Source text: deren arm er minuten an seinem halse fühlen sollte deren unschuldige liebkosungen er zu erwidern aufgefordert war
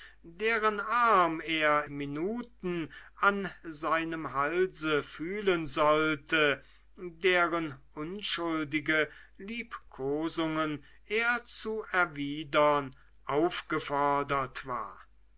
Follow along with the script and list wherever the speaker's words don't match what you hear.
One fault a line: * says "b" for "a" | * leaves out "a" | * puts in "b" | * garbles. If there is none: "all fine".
all fine